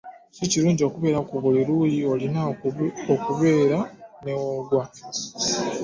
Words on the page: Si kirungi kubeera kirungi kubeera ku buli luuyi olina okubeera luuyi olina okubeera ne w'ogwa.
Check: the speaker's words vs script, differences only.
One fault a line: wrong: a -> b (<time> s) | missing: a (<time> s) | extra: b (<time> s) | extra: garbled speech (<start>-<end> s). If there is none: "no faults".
missing: kirungi kubeera (1.2 s)
missing: luuyi olina okubeera (3.8 s)